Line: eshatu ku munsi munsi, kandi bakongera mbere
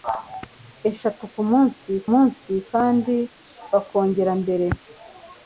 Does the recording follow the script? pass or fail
pass